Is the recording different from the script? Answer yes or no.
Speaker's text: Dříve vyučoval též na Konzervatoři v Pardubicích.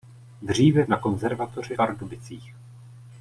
yes